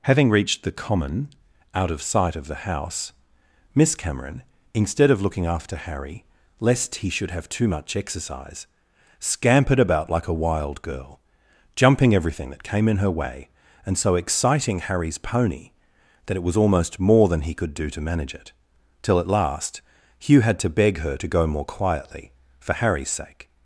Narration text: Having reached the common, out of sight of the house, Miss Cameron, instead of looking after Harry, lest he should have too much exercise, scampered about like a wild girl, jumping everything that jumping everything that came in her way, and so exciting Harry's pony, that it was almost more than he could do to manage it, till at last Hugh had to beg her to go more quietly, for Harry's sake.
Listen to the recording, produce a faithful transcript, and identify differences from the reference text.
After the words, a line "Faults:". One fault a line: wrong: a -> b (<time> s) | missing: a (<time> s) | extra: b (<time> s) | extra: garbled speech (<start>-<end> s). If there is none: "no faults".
Having reached the common, out of sight of the house, Miss Cameron, instead of looking after Harry, lest he should have too much exercise, scampered about like a wild girl, jumping everything that came in her way, and so exciting Harry's pony, that it was almost more than he could do to manage it, till at last Hugh had to beg her to go more quietly, for Harry's sake.
Faults:
missing: jumping everything that (12.6 s)